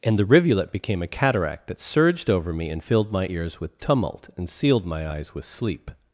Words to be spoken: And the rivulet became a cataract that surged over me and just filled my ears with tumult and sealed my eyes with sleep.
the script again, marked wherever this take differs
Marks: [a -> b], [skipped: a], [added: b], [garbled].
And the rivulet became a cataract that surged over me and [skipped: just] filled my ears with tumult and sealed my eyes with sleep.